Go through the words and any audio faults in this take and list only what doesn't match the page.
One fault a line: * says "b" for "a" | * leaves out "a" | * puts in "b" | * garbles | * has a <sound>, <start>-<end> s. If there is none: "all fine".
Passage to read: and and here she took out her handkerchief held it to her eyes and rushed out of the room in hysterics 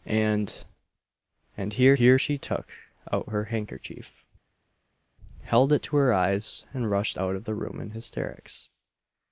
* puts in "here"